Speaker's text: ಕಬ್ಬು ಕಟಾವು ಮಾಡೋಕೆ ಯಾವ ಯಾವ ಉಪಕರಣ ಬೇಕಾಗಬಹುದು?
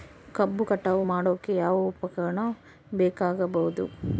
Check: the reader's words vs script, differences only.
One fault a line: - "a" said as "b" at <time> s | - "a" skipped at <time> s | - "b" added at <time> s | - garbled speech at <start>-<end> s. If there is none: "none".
- "ಯಾವ" skipped at 1.8 s